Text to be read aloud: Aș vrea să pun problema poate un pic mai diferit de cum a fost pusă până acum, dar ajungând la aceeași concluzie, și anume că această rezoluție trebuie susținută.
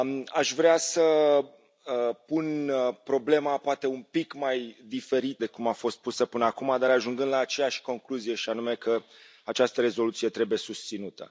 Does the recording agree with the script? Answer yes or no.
yes